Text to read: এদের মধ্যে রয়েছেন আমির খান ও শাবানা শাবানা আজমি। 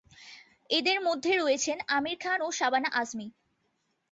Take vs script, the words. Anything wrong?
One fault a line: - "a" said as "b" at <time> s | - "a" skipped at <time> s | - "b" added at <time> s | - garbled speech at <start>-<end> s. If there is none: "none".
- "শাবানা" skipped at 2.9 s